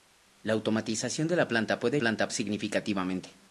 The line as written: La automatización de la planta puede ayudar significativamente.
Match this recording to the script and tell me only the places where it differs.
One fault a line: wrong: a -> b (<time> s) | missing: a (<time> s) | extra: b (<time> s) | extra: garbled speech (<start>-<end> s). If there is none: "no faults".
wrong: ayudar -> planta (2.0 s)